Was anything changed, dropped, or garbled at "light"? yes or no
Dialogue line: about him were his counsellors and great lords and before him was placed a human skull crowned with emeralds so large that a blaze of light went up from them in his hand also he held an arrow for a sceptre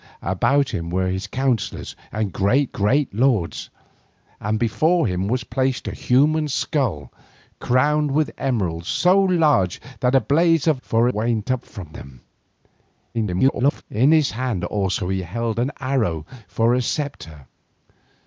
yes